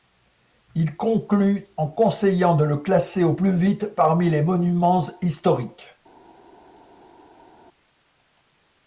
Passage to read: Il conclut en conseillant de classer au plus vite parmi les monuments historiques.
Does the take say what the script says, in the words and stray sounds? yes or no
no